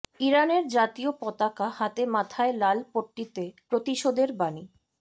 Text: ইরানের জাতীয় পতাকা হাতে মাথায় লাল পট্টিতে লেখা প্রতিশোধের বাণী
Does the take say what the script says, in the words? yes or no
no